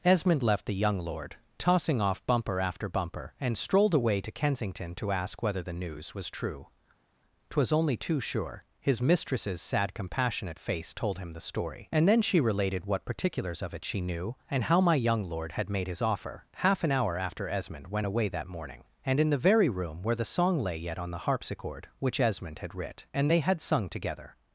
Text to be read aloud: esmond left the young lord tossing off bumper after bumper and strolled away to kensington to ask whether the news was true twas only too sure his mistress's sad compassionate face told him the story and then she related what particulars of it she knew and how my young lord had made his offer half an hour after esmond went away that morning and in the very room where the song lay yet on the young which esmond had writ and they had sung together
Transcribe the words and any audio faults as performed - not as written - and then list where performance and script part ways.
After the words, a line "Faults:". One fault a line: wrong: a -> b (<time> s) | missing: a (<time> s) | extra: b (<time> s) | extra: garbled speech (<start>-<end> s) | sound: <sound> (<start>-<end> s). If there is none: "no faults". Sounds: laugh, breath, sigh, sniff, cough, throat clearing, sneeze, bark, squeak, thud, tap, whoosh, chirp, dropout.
esmond left the young lord tossing off bumper after bumper and strolled away to kensington to ask whether the news was true twas only too sure his mistress's sad compassionate face told him the story and then she related what particulars of it she knew and how my young lord had made his offer half an hour after esmond went away that morning and in the very room where the song lay yet on the harpsichord which esmond had writ and they had sung together
Faults:
wrong: young -> harpsichord (21.2 s)